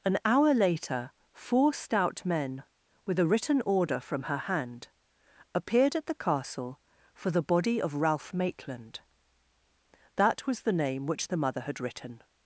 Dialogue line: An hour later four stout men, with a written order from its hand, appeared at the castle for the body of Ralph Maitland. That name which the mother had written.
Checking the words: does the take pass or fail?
fail